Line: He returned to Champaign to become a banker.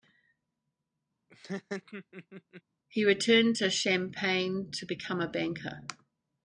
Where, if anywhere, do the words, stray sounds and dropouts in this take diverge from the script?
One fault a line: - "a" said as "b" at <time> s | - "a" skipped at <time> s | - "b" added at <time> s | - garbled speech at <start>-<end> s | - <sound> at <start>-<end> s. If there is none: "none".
- laugh at 1.3-2.6 s